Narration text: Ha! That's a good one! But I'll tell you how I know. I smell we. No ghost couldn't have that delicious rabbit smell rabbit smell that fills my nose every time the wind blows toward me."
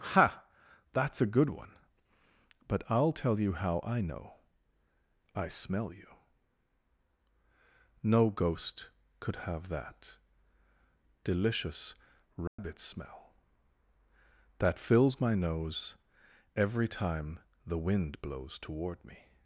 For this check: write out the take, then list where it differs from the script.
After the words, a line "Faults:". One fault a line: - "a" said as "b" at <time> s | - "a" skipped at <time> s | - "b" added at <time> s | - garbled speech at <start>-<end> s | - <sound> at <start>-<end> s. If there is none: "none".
Ha! That's a good one! But I'll tell you how I know. I smell you. No ghost could have that delicious rabbit smell that fills my nose every time the wind blows toward me."
Faults:
- "we" said as "you" at 5.9 s
- "couldn't" said as "could" at 9.2 s
- dropout at 12.5-12.6 s
- "rabbit smell" skipped at 13.3 s